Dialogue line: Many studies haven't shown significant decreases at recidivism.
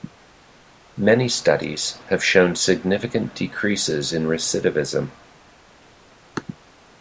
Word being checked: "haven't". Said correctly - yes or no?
no